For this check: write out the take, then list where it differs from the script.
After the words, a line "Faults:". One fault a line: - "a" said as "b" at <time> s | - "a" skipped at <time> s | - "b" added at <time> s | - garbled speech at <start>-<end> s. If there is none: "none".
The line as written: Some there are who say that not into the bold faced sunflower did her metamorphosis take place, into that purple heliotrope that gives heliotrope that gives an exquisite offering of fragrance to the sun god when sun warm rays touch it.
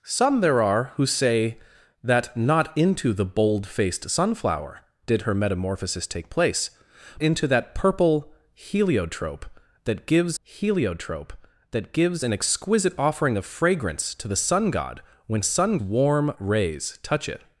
Some there are who say that not into the bold faced sunflower did her metamorphosis take place, into that purple heliotrope that gives heliotrope that gives an exquisite offering of fragrance to the sun god when sun warm rays touch it.
Faults:
none